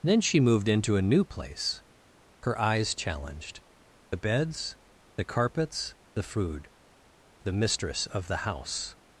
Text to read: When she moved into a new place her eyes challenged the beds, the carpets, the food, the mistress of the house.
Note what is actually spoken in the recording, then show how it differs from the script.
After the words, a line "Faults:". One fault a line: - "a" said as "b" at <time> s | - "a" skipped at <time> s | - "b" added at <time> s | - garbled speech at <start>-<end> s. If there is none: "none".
Then she moved into a new place her eyes challenged the beds, the carpets, the food, the mistress of the house.
Faults:
- "When" said as "Then" at 0.0 s